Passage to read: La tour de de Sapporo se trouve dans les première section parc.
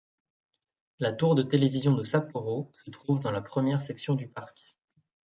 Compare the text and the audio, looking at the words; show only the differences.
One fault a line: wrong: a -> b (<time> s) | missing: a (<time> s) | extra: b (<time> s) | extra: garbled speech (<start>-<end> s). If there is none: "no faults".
extra: télévision (1.4 s)
wrong: les -> la (3.3 s)
extra: du (4.2 s)